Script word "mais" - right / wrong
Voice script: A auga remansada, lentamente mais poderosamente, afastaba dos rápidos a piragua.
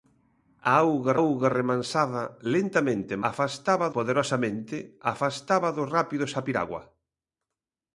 wrong